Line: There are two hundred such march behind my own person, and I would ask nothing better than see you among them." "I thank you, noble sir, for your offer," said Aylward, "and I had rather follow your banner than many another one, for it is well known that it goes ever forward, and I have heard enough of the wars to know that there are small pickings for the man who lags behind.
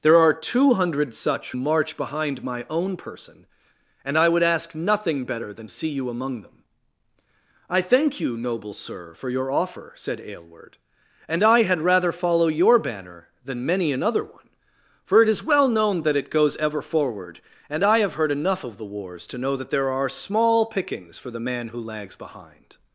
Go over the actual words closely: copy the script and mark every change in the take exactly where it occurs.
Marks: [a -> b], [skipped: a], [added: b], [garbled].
There are two hundred such march behind my own person, and I would ask nothing better than see you among them." "I thank you, noble sir, for your offer," said Aylward, "and I had rather follow your banner than many another one, for it is well known that it goes ever forward, and I have heard enough of the wars to know that there are small pickings for the man who lags behind.